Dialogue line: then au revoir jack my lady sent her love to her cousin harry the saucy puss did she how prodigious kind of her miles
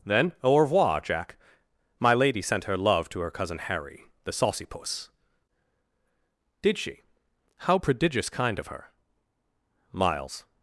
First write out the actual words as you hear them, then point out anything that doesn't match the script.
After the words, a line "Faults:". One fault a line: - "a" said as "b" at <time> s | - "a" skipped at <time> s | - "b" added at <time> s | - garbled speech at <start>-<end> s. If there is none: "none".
then au revoir jack my lady sent her love to her cousin harry the saucy puss did she how prodigious kind of her miles
Faults:
none